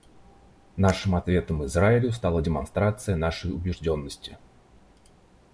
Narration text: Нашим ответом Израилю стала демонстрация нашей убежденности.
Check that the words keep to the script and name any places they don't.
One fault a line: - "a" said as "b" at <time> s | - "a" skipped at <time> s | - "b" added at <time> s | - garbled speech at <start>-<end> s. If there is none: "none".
none